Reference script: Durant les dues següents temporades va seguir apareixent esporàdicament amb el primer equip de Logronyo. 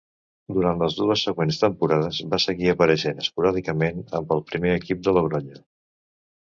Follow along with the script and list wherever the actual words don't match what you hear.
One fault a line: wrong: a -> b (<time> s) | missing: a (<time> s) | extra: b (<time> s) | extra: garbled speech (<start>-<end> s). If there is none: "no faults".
no faults